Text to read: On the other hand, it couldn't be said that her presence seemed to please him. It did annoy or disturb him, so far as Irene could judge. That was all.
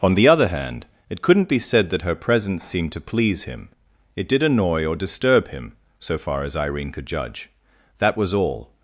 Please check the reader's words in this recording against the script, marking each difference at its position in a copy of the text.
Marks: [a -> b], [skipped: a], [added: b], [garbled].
On the other hand, it couldn't be said that her presence seemed to please him. It did annoy or disturb him, so far as Irene could judge. That was all.